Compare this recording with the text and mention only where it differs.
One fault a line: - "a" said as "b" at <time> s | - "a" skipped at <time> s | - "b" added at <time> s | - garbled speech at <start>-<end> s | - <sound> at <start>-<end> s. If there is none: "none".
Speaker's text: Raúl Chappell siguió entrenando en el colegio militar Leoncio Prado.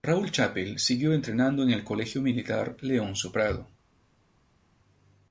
none